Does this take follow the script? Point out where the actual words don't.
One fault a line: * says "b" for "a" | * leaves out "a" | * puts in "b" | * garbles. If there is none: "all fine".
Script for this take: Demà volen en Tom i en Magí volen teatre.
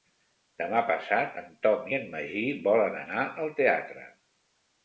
* says "passat" for "volen"
* puts in "anar al"